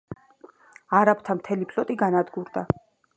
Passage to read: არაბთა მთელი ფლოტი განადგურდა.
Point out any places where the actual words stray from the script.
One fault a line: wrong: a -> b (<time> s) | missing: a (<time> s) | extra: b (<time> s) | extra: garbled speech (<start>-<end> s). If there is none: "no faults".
no faults